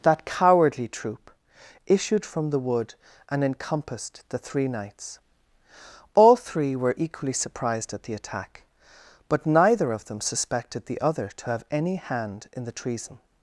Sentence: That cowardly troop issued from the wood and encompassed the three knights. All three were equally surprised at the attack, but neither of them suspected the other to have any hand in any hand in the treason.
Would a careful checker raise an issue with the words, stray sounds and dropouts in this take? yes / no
yes